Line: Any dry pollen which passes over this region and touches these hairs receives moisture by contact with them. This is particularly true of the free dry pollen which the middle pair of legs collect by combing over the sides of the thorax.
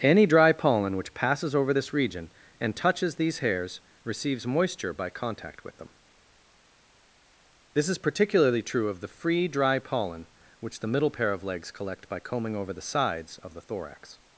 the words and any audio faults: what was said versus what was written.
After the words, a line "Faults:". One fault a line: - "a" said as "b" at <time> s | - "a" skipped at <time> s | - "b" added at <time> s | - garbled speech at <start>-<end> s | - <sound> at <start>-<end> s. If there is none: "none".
Any dry pollen which passes over this region and touches these hairs receives moisture by contact with them. This is particularly true of the free dry pollen which the middle pair of legs collect by combing over the sides of the thorax.
Faults:
none